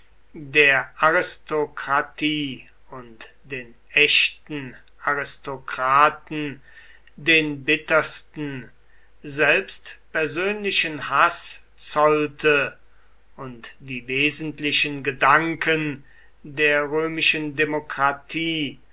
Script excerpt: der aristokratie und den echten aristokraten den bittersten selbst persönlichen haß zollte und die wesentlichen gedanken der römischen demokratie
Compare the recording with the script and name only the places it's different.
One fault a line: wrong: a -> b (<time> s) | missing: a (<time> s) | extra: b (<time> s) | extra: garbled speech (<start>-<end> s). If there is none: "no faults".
no faults